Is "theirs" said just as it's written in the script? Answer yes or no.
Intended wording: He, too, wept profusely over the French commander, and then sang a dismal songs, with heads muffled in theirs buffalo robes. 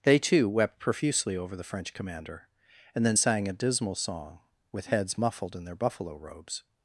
no